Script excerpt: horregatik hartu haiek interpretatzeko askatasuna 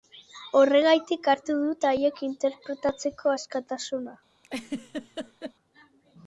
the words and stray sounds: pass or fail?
fail